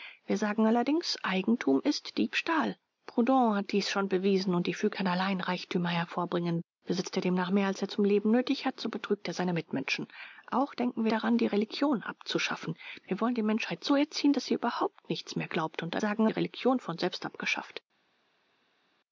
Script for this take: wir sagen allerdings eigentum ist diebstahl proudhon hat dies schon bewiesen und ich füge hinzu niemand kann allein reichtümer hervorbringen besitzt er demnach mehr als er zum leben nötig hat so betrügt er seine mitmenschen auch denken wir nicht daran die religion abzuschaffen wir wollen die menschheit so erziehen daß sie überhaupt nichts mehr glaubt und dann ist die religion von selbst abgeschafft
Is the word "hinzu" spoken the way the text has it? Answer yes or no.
no